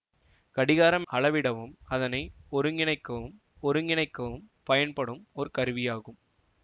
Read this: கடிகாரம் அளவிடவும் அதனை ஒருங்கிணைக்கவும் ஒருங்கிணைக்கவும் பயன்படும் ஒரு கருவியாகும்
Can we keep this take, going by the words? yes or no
yes